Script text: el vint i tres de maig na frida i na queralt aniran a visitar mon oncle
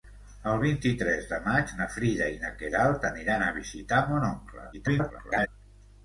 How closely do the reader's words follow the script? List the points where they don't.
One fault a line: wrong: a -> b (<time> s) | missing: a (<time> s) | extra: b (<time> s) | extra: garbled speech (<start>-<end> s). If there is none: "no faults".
extra: garbled speech (4.7-5.5 s)